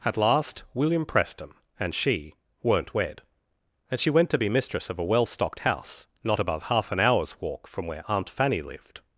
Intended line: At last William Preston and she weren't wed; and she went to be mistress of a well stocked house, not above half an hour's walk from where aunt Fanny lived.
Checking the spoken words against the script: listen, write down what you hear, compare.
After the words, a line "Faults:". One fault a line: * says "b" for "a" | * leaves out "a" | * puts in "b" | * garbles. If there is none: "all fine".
At last William Preston and she weren't wed; and she went to be mistress of a well stocked house, not above half an hour's walk from where aunt Fanny lived.
Faults:
all fine